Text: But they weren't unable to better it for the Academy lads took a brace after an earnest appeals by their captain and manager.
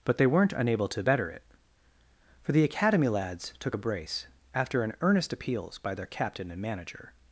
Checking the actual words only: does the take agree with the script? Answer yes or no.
yes